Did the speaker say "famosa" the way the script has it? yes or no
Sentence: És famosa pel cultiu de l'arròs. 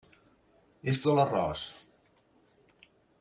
no